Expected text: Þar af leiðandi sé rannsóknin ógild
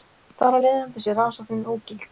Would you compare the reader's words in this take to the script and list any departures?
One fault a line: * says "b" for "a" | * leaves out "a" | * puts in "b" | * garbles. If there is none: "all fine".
all fine